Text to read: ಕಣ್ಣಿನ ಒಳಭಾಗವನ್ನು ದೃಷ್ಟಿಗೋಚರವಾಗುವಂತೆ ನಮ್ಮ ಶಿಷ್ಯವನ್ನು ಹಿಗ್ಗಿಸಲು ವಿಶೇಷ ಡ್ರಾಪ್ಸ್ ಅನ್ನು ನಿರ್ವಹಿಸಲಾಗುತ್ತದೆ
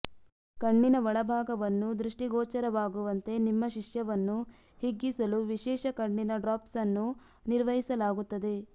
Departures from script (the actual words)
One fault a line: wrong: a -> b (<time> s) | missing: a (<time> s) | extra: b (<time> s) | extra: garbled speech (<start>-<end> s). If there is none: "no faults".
wrong: ನಮ್ಮ -> ನಿಮ್ಮ (3.5 s)
extra: ಕಣ್ಣಿನ (6.0 s)